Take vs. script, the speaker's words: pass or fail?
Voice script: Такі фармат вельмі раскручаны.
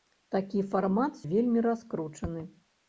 pass